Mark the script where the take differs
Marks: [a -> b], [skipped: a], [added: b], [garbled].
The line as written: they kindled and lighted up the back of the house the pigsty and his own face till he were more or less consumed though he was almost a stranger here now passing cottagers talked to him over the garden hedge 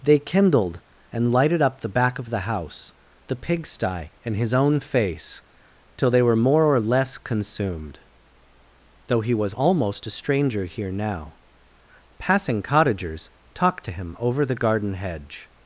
they kindled and lighted up the back of the house the pigsty and his own face till [he -> they] were more or less consumed though he was almost a stranger here now passing cottagers talked to him over the garden hedge